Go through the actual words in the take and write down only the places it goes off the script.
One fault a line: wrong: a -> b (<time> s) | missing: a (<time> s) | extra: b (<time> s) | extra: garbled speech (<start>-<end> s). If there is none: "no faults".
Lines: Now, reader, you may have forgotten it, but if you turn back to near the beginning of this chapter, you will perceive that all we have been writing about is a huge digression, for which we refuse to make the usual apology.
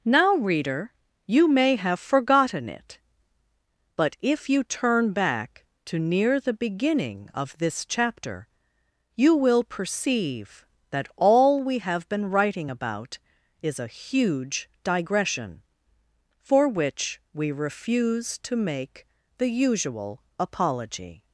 no faults